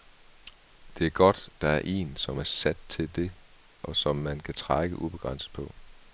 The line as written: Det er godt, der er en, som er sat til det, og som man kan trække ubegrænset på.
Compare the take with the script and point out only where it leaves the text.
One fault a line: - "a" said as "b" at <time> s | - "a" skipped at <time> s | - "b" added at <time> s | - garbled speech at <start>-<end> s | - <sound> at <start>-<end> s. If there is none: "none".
none